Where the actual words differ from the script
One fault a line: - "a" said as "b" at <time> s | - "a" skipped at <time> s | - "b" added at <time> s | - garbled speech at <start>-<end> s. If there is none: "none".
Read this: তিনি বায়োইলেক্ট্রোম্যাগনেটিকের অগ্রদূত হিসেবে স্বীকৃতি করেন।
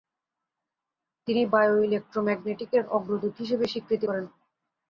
none